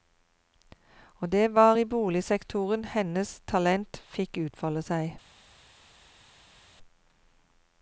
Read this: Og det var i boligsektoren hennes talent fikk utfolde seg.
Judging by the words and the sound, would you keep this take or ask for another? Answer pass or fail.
pass